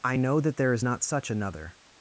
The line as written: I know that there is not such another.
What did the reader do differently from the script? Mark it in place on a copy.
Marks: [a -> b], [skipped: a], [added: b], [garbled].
I know that there is not such another.